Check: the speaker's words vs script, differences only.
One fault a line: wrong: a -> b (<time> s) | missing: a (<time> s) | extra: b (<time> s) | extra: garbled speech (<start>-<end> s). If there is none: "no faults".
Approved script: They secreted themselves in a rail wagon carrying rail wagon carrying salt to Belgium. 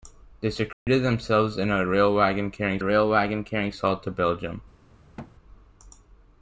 no faults